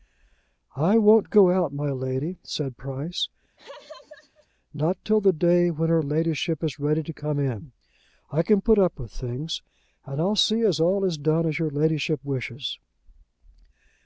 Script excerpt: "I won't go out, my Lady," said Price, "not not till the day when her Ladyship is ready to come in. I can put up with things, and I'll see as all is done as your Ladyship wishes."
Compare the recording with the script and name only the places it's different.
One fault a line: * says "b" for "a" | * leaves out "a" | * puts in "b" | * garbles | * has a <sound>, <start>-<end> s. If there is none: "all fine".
* has a laugh, 3.6-4.5 s
* leaves out "not"